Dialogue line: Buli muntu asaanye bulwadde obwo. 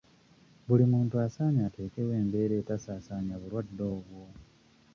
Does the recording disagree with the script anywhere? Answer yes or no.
yes